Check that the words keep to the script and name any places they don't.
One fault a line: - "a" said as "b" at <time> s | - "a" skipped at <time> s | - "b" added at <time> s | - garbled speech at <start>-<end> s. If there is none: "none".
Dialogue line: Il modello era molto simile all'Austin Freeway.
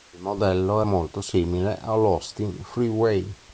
- "era" skipped at 0.8 s